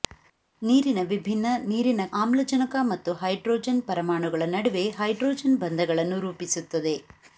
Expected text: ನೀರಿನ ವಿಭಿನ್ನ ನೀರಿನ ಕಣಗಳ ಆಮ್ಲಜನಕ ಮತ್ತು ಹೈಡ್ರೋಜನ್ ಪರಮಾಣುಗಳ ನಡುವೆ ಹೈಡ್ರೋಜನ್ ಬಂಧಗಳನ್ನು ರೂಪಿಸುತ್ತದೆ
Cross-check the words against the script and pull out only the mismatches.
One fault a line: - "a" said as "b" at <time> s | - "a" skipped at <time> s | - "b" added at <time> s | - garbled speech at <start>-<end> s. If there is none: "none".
- "ಕಣಗಳ" skipped at 2.0 s